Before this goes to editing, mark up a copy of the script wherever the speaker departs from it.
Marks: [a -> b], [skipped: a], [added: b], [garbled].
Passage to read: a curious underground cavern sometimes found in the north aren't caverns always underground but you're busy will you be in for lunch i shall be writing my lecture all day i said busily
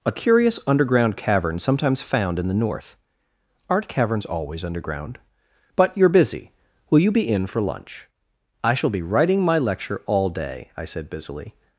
a curious underground cavern sometimes found in the north aren't caverns always underground but you're busy will you be in for lunch i shall be writing my lecture all day i said busily